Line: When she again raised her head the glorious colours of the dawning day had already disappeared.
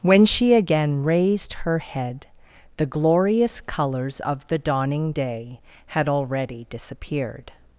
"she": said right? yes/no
yes